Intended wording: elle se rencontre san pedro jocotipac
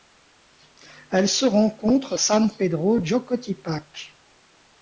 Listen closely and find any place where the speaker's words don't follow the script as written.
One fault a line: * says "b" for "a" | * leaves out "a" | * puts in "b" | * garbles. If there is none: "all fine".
all fine